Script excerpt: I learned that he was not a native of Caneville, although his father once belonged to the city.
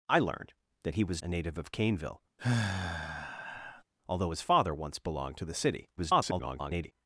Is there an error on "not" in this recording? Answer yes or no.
yes